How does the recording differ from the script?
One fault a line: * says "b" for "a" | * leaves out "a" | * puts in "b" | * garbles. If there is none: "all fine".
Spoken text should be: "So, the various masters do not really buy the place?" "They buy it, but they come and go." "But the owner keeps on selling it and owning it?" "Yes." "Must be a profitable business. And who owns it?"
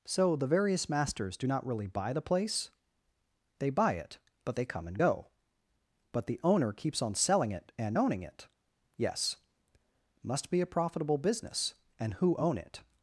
* says "own" for "owns"